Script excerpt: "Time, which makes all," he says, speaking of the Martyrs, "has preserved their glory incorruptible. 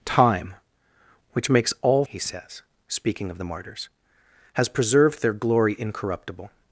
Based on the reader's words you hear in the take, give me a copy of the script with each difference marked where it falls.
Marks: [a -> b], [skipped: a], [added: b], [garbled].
"Time, which makes all," he says, speaking of the Martyrs, "has preserved their glory incorruptible.